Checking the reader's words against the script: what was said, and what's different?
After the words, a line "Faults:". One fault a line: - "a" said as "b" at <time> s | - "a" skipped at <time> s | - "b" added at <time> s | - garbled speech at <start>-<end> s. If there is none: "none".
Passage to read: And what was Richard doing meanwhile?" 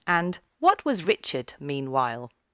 And what was Richard meanwhile?"
Faults:
- "doing" skipped at 1.5 s